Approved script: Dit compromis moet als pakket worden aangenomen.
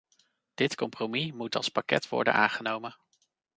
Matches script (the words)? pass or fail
pass